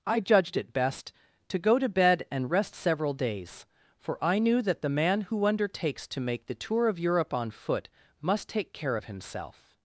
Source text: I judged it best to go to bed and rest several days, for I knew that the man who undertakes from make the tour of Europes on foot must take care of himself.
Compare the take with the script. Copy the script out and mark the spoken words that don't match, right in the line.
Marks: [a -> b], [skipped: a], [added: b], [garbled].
I judged it best to go to bed and rest several days, for I knew that the man who undertakes [from -> to] make the tour of [Europes -> Europe] on foot must take care of himself.